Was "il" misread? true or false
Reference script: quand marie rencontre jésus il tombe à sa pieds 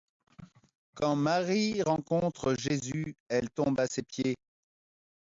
true